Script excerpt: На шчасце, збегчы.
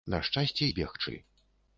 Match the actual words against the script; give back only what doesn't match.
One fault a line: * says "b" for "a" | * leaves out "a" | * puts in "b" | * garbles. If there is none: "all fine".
all fine